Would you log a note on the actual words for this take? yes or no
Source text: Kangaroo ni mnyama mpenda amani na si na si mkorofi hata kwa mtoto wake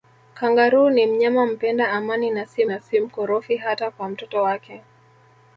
no